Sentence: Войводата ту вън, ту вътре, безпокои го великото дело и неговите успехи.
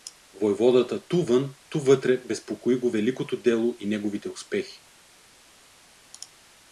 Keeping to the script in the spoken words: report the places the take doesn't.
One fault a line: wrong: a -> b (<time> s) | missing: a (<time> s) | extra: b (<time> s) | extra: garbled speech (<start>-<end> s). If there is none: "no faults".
no faults